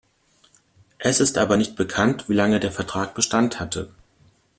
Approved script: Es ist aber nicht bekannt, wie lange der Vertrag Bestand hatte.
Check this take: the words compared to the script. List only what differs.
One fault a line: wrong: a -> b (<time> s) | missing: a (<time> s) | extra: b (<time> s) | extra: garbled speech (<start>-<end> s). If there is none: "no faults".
no faults